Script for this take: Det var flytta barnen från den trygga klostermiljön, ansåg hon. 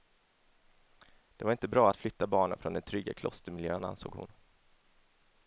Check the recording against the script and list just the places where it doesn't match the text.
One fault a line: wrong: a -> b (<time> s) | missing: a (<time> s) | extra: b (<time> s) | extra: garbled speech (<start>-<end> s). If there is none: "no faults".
extra: inte bra att (1.5 s)